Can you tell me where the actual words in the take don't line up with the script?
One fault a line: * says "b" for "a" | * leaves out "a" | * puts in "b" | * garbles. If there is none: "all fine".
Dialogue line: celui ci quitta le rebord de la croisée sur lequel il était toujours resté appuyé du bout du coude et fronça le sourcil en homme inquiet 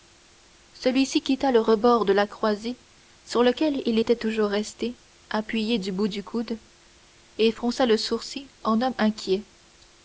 all fine